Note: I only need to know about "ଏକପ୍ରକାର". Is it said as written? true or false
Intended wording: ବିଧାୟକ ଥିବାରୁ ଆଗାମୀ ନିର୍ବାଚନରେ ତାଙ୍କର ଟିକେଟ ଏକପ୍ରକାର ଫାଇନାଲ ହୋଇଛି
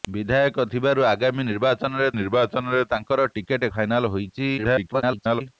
false